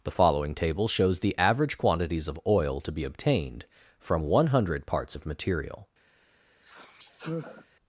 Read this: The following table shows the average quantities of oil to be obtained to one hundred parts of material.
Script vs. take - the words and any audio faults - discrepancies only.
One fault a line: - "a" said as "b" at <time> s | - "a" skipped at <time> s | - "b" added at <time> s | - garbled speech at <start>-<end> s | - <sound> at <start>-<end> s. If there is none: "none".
- "to" said as "from" at 4.0 s
- sigh at 6.6-7.7 s